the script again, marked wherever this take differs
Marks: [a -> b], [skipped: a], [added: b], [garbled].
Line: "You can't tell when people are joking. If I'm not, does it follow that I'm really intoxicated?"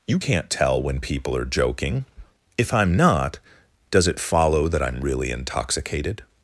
"You can't tell when people are joking. If I'm not, does it follow that I'm really intoxicated?"